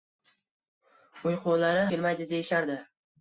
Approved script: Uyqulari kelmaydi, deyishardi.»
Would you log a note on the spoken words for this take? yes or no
no